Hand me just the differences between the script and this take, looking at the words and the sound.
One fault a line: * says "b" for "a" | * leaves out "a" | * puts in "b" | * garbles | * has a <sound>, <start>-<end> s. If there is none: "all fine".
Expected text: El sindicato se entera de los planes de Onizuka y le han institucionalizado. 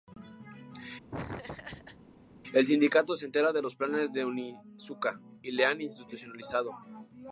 * has a laugh, 1.1-2.0 s